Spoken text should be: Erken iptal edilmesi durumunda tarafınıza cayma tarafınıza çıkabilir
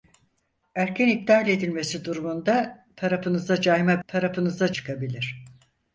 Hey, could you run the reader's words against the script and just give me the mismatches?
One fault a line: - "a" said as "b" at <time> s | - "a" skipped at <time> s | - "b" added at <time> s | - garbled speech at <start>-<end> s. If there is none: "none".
none